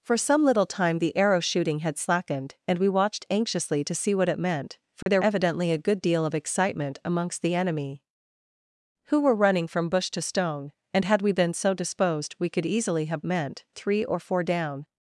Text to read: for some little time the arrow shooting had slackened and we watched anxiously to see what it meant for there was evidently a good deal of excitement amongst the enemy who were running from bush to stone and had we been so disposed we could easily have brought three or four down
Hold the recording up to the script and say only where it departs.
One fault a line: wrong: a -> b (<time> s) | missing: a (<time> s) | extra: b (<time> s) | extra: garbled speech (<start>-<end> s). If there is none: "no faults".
missing: was (5.2 s)
wrong: brought -> meant (13.2 s)